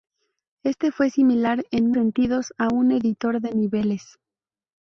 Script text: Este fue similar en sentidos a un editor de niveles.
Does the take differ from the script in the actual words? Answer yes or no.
no